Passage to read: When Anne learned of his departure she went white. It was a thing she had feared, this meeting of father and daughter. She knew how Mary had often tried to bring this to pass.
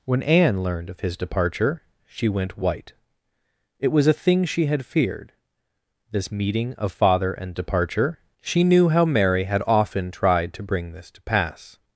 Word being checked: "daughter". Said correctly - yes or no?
no